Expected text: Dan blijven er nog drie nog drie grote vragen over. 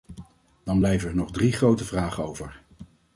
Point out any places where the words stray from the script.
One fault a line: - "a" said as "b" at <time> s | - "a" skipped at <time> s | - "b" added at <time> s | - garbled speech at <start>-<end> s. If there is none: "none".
- "nog drie" skipped at 1.5 s